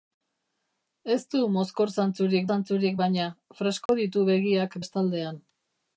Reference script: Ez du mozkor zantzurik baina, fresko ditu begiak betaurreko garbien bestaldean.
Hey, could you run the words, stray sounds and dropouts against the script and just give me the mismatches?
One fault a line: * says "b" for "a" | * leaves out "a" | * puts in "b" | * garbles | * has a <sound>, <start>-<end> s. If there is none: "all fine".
* puts in "zantzurik"
* has a dropout, 3.9-3.9 s
* leaves out "betaurreko garbien"